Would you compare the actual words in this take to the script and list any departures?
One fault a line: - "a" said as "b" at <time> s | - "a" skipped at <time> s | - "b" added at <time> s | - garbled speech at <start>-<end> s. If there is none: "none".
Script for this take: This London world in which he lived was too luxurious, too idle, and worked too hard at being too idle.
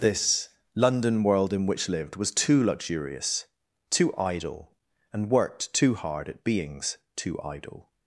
- "he" skipped at 1.9 s
- "being" said as "beings" at 6.4 s